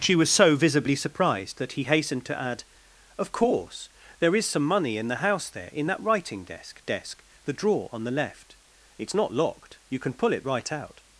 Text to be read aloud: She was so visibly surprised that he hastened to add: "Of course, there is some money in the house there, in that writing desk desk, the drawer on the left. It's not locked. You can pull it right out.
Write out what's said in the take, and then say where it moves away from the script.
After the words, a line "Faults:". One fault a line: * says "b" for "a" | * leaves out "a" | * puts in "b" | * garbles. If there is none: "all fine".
She was so visibly surprised that he hastened to add: "Of course, there is some money in the house there, in that writing desk desk, the drawer on the left. It's not locked. You can pull it right out.
Faults:
all fine